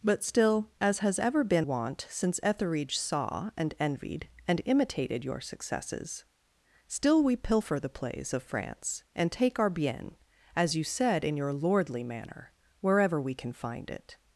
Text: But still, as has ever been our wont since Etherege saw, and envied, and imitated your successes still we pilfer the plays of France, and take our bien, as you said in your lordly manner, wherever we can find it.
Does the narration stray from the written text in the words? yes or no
yes